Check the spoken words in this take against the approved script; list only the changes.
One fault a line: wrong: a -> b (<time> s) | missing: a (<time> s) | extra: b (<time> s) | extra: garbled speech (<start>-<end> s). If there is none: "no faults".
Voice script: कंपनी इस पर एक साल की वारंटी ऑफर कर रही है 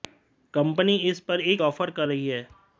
missing: साल की वारंटी (1.6 s)